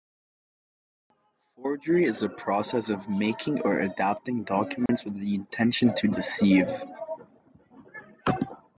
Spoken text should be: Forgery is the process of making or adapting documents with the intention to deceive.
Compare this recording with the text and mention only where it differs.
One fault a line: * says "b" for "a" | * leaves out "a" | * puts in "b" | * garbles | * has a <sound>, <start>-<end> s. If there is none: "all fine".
* has a dropout, 4.9-4.9 s